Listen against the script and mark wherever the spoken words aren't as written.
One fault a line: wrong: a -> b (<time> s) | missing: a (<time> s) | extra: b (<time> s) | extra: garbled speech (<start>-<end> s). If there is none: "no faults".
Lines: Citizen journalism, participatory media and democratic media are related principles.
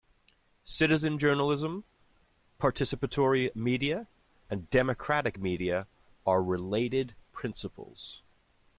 no faults